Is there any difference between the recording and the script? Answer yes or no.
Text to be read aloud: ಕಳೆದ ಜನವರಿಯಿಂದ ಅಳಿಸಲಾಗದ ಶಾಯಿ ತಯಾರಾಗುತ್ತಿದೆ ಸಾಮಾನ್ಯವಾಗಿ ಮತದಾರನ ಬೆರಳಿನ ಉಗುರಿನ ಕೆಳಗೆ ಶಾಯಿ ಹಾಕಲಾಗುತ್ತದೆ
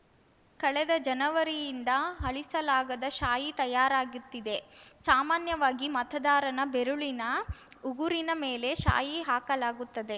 yes